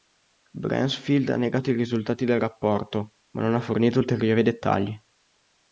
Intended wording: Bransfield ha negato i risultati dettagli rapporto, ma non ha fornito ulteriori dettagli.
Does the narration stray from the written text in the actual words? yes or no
yes